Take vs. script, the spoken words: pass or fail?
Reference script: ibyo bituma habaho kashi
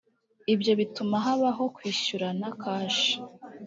fail